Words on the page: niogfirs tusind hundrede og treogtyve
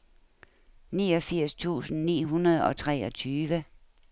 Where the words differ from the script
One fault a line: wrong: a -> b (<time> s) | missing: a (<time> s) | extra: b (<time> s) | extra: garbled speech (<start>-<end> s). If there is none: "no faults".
extra: ni (2.0 s)